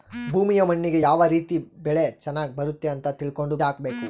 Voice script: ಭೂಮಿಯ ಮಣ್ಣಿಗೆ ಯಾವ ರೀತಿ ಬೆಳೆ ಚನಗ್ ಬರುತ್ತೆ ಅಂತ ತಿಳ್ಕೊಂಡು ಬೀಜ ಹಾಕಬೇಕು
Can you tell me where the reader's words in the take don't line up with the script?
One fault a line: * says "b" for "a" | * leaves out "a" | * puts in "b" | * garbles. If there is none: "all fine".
* leaves out "ಬೀಜ"